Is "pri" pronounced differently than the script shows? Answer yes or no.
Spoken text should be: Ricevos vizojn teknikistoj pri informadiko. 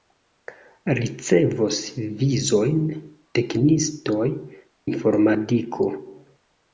yes